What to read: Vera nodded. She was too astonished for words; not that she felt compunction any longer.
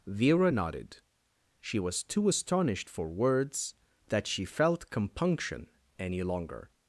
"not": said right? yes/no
no